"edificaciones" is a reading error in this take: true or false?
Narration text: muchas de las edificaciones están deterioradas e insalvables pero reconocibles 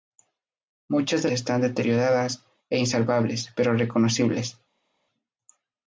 true